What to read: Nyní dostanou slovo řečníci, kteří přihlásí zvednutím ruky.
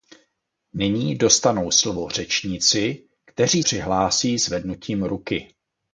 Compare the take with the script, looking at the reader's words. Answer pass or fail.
pass